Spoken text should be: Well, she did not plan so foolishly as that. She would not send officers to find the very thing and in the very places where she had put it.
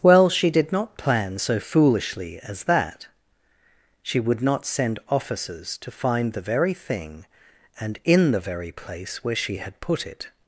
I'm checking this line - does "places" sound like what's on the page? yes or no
no